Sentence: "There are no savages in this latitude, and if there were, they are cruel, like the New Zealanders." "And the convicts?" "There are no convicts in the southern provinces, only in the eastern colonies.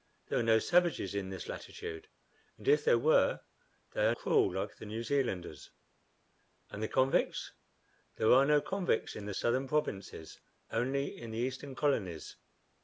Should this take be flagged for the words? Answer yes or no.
no